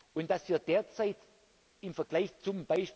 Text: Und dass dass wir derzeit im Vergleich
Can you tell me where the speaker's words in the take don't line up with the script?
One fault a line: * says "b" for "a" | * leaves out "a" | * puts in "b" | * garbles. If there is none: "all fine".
* leaves out "dass"